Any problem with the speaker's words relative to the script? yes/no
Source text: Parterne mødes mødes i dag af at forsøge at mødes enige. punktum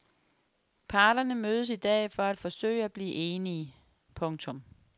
yes